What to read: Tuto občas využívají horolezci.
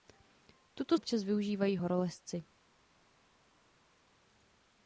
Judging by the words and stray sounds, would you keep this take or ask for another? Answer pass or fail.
pass